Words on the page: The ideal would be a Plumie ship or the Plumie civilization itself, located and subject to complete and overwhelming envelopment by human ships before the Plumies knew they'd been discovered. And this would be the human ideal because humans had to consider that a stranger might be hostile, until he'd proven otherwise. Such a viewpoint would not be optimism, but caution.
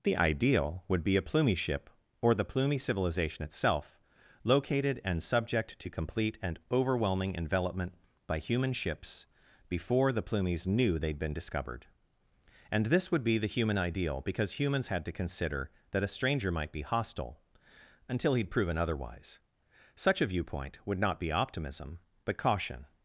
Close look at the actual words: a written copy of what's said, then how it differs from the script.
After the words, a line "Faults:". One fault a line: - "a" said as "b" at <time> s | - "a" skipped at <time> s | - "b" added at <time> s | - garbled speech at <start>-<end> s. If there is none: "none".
The ideal would be a Plumie ship or the Plumie civilization itself, located and subject to complete and overwhelming envelopment by human ships before the Plumies knew they'd been discovered. And this would be the human ideal because humans had to consider that a stranger might be hostile, until he'd proven otherwise. Such a viewpoint would not be optimism, but caution.
Faults:
none